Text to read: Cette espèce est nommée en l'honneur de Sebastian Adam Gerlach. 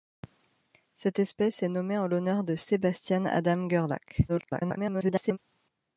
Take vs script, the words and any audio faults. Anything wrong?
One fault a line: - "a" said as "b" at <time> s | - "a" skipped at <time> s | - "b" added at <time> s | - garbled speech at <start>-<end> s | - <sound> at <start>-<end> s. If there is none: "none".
- garbled speech at 4.3-5.4 s